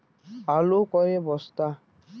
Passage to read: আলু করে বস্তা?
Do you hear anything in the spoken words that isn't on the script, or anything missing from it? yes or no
no